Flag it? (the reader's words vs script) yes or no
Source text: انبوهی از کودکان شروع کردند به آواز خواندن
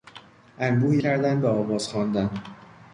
yes